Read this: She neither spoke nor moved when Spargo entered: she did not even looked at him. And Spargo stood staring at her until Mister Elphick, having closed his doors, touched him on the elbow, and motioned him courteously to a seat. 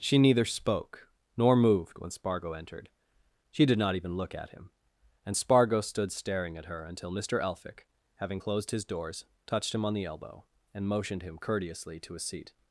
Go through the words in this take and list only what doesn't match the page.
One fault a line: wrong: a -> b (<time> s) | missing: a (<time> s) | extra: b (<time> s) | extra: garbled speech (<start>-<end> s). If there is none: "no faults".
wrong: looked -> look (4.2 s)